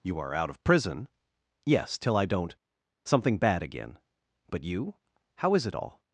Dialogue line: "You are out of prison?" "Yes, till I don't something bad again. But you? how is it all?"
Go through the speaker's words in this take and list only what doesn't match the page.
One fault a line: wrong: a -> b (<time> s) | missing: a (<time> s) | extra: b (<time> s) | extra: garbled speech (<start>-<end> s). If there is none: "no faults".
no faults